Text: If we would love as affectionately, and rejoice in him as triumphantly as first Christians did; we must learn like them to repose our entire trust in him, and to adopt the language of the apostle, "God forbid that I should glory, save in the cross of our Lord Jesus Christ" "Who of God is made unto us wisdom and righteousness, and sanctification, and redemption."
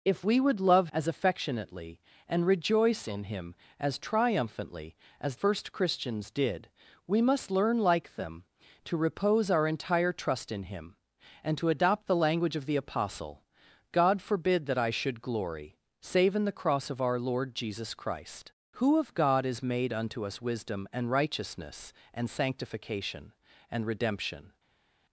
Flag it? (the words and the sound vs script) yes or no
no